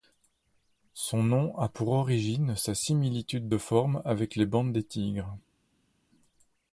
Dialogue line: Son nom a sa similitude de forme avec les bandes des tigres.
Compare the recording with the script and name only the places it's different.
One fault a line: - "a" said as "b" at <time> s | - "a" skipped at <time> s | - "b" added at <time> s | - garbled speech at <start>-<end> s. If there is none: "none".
- "pour origine" added at 1.7 s